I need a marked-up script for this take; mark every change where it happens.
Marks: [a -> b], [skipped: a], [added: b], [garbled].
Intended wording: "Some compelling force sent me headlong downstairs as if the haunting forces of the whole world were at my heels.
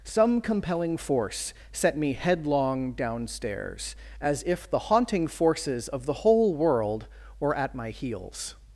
"Some compelling force [sent -> set] me headlong downstairs as if the haunting forces of the whole world were at my heels.